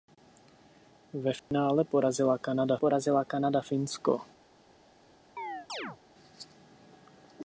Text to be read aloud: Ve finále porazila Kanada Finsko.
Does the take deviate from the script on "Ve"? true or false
false